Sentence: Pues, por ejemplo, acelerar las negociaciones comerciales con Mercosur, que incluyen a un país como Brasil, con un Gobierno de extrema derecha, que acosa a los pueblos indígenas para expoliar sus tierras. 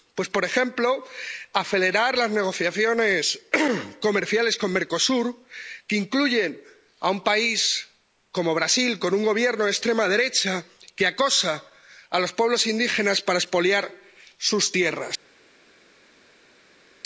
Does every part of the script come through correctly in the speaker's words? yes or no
yes